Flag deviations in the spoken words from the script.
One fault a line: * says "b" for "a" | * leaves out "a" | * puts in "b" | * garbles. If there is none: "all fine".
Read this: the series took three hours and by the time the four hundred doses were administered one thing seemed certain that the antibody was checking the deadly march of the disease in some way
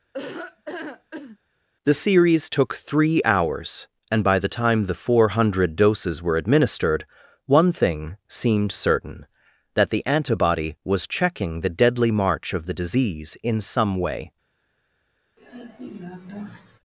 all fine